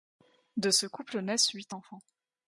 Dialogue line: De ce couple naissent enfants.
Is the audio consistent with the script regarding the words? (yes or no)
no